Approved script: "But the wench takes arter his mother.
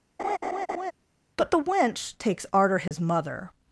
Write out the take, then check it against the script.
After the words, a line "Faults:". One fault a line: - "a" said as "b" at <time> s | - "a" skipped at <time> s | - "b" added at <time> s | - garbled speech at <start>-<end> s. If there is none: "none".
"But the wench takes arter his mother.
Faults:
none